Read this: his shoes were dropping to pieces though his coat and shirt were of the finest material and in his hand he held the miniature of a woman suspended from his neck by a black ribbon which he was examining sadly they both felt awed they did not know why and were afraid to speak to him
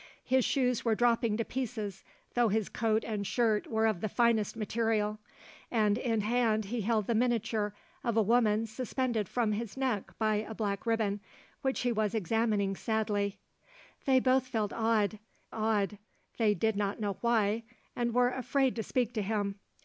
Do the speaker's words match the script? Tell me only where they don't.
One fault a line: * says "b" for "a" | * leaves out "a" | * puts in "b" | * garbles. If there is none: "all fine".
* leaves out "his"
* puts in "awed"